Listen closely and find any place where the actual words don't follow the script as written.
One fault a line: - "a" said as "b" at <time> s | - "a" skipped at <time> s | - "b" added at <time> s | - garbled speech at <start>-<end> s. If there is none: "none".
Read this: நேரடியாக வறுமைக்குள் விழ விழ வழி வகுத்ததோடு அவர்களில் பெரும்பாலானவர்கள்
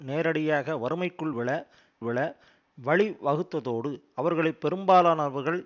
none